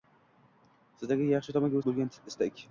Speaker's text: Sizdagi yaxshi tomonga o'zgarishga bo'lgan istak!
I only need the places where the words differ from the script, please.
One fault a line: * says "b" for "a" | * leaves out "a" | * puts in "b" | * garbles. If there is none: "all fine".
* leaves out "o'zgarishga"